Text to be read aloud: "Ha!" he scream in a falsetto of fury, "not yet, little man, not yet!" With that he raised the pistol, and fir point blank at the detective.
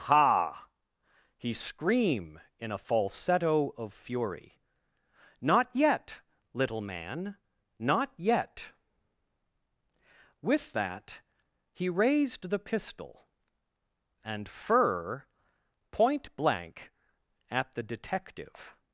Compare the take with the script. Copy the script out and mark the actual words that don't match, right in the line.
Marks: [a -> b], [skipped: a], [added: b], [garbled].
"Ha!" he scream in a falsetto of fury, "not yet, little man, not yet!" With that he raised the pistol, and fir point blank at the detective.